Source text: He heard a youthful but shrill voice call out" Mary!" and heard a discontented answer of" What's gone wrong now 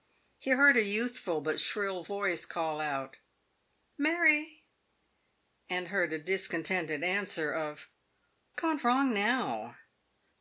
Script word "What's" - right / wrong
wrong